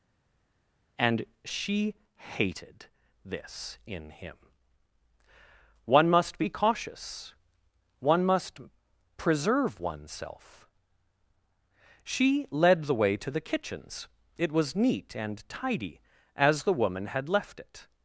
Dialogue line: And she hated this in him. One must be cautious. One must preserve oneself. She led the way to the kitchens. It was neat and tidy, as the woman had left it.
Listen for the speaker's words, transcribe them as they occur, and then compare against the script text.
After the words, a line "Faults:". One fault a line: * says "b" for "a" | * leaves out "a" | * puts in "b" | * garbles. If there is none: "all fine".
And she hated this in him. One must be cautious. One must preserve oneself. She led the way to the kitchens. It was neat and tidy, as the woman had left it.
Faults:
all fine